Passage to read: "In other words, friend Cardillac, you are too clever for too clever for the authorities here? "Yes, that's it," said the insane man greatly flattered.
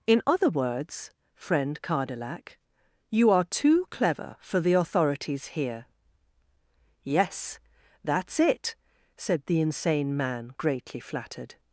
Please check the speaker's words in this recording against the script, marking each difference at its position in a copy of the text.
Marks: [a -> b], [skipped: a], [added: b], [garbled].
"In other words, friend Cardillac, you are too clever for [skipped: too clever for] the authorities here? "Yes, that's it," said the insane man greatly flattered.